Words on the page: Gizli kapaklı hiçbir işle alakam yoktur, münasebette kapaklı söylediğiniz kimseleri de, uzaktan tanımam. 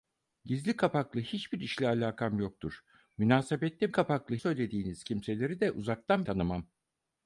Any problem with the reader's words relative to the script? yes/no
no